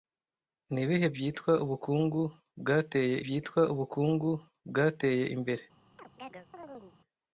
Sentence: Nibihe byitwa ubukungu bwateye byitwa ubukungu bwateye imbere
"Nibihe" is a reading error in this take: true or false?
false